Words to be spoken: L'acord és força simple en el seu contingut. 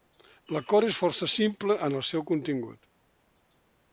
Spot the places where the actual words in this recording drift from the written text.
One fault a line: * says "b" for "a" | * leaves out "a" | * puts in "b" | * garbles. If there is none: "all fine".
all fine